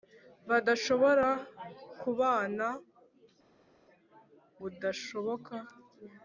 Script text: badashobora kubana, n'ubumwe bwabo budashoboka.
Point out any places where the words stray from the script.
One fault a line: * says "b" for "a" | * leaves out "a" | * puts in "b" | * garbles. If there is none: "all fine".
* leaves out "n'ubumwe bwabo"